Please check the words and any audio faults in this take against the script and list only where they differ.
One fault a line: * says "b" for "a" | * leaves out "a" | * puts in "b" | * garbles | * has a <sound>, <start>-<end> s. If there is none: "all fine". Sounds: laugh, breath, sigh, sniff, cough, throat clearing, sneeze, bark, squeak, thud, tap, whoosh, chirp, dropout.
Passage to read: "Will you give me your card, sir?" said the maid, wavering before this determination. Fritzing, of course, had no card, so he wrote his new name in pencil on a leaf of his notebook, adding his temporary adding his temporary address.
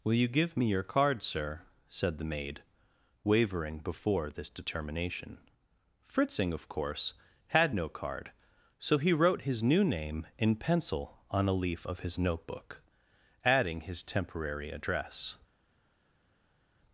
* leaves out "adding his temporary"